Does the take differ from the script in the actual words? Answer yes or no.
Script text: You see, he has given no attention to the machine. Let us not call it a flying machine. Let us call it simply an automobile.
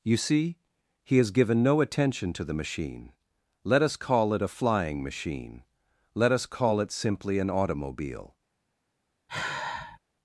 yes